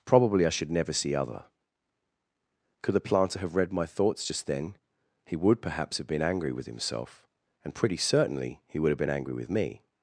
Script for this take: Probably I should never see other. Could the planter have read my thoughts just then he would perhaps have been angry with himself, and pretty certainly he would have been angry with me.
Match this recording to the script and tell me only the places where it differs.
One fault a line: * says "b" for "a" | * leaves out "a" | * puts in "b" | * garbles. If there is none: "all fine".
all fine